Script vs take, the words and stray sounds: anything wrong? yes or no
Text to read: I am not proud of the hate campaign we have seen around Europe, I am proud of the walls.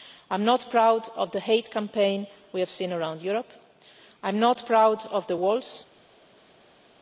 yes